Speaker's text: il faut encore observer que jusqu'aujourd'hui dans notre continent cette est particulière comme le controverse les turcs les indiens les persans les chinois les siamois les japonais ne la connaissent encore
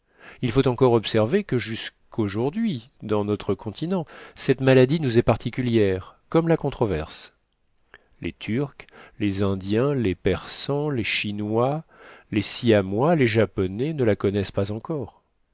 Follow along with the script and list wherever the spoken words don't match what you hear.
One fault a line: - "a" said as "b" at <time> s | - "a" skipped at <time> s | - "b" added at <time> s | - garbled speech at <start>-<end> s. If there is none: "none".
- "maladie nous" added at 4.6 s
- "le" said as "la" at 6.5 s
- "pas" added at 14.5 s